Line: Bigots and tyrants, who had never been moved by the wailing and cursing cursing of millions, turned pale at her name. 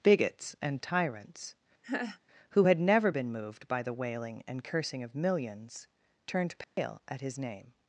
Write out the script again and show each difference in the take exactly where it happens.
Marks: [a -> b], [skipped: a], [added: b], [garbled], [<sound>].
Bigots and tyrants, [laugh] who had never been moved by the wailing and cursing [skipped: cursing] of millions, turned pale [dropout] at [her -> his] name.